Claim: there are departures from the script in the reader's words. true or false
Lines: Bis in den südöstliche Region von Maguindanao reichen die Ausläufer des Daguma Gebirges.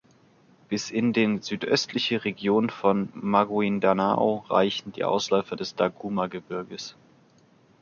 false